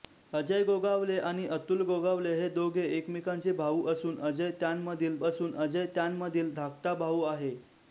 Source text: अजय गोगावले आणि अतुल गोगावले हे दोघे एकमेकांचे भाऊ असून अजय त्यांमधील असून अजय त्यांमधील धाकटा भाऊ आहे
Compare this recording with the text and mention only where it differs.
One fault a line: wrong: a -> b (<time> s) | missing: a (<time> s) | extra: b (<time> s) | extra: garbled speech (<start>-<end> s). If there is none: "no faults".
no faults